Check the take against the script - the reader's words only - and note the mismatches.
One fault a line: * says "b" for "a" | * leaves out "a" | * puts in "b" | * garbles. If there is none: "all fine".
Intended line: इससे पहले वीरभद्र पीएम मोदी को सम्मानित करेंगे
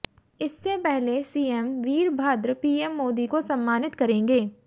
* puts in "सीएम"